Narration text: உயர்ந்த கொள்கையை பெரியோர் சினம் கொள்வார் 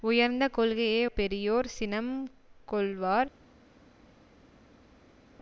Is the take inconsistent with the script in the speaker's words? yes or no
no